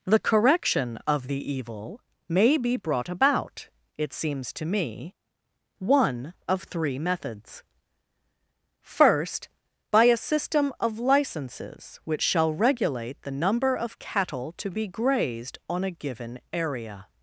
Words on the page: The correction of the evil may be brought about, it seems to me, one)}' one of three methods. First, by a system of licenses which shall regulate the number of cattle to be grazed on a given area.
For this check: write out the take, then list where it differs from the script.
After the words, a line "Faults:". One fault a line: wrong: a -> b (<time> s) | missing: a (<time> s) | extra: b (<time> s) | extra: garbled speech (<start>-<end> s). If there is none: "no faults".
The correction of the evil may be brought about, it seems to me, one)}' of three methods. First, by a system of licenses which shall regulate the number of cattle to be grazed on a given area.
Faults:
missing: one (6.3 s)